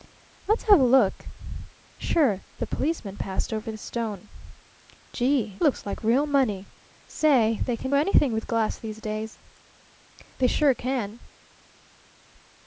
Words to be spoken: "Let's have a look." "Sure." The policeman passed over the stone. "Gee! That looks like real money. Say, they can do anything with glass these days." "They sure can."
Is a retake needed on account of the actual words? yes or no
yes